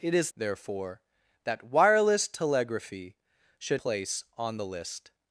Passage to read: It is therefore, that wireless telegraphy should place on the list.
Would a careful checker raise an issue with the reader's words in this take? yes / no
no